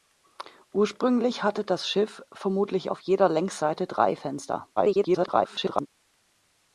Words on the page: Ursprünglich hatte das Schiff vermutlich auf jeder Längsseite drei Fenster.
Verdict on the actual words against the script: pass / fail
fail